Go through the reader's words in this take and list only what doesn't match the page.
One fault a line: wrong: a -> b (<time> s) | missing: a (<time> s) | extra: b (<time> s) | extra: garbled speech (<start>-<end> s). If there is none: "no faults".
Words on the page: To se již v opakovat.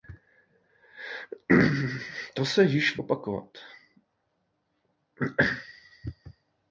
no faults